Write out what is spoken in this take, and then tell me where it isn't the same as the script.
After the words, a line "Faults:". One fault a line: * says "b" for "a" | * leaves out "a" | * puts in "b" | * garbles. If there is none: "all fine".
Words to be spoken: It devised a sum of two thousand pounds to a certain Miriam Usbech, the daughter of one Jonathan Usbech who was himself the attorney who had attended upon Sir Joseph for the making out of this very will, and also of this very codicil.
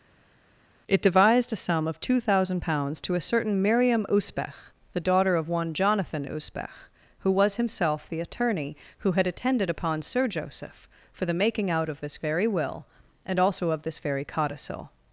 It devised a sum of two thousand pounds to a certain Miriam Usbech, the daughter of one Jonathan Usbech who was himself the attorney who had attended upon Sir Joseph for the making out of this very will, and also of this very codicil.
Faults:
all fine